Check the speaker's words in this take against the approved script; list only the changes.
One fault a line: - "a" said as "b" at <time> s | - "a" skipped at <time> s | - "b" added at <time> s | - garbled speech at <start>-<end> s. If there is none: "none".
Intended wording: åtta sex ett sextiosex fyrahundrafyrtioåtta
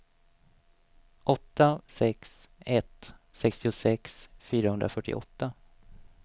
none